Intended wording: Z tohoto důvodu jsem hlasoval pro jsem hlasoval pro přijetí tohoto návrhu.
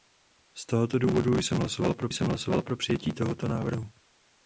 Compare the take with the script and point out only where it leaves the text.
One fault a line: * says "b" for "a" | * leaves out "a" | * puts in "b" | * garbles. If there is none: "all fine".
all fine